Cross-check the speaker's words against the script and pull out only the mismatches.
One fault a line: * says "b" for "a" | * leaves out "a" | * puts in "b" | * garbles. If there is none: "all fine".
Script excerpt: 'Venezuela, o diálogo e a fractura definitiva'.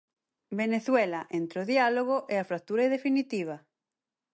* puts in "entre"